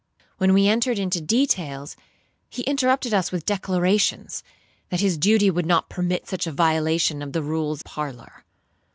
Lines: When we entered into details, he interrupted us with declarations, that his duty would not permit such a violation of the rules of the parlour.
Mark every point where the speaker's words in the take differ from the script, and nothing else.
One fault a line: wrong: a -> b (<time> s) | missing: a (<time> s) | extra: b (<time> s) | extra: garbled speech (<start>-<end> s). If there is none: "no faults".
missing: of the (7.8 s)